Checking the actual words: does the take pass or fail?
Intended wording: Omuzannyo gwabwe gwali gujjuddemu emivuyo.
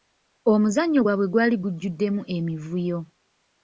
pass